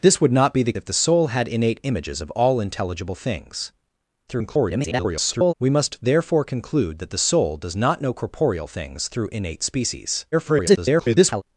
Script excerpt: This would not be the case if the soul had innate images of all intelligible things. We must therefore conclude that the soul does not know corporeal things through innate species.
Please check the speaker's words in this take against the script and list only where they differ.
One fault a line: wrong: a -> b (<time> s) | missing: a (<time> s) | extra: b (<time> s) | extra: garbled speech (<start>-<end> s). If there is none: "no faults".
missing: case (0.7 s)
extra: garbled speech (4.3-5.5 s)
extra: garbled speech (10.3-11.4 s)